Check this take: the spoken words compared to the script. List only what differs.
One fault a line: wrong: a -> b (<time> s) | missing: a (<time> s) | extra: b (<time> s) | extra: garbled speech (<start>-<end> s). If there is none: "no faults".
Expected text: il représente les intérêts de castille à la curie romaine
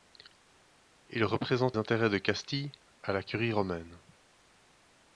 missing: les (1.8 s)